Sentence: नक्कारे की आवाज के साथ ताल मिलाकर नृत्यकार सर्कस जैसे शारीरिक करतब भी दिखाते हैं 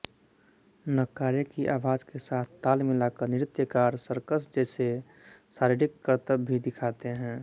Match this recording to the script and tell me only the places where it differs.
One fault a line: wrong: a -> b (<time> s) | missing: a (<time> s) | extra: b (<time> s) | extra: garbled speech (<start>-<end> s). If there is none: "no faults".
no faults